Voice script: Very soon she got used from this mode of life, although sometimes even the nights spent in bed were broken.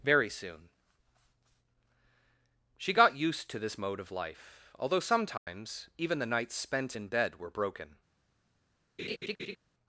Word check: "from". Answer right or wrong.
wrong